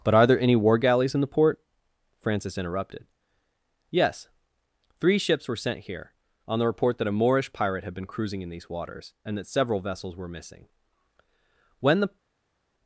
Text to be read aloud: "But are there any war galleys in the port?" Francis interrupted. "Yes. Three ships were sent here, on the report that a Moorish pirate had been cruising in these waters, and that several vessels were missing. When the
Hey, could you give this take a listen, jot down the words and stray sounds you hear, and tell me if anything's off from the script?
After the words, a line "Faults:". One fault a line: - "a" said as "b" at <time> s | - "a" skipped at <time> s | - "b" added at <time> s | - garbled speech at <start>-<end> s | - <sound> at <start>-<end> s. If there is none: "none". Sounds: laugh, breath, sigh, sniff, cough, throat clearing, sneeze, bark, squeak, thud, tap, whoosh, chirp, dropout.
"But are there any war galleys in the port?" Francis interrupted. "Yes. Three ships were sent here, on the report that a Moorish pirate had been cruising in these waters, and that several vessels were missing. When the
Faults:
none